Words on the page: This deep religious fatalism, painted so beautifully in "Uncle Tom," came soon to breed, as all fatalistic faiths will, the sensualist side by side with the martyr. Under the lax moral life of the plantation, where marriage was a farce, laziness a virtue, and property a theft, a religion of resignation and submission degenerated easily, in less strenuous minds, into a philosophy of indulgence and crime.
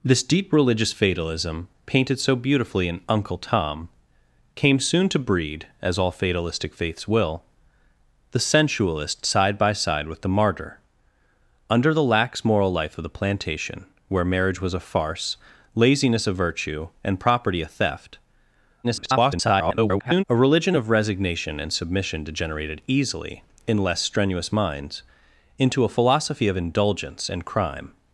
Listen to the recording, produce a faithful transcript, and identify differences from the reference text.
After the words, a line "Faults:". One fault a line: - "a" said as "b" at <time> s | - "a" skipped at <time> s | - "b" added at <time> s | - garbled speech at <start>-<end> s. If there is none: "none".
This deep religious fatalism, painted so beautifully in "Uncle Tom," came soon to breed, as all fatalistic faiths will, the sensualist side by side with the martyr. Under the lax moral life of the plantation, where marriage was a farce, laziness a virtue, and property a theft, [garbled] a religion of resignation and submission degenerated easily, in less strenuous minds, into a philosophy of indulgence and crime.
Faults:
- garbled speech at 18.8-20.2 s